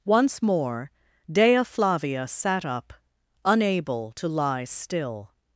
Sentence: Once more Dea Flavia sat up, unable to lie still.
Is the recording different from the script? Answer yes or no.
no